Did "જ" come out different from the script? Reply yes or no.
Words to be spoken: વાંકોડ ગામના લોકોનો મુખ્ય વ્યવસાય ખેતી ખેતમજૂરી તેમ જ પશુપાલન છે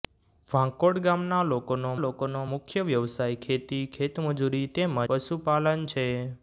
yes